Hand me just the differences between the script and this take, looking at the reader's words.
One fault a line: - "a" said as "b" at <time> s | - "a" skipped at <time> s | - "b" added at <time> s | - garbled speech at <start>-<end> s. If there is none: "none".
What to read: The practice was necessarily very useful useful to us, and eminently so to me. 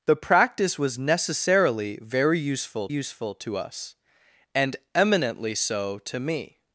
none